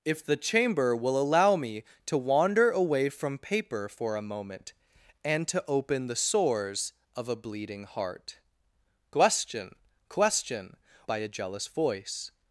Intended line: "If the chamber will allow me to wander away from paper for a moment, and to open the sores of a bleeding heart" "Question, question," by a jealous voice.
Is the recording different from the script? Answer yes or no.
no